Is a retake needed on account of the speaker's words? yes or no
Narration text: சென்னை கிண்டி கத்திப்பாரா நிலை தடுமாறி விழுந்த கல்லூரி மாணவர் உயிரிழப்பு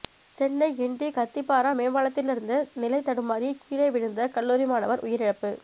yes